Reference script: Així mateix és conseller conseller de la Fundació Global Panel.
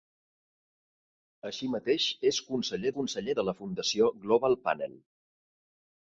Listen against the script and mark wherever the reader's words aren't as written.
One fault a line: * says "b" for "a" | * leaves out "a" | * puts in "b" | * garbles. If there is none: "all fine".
all fine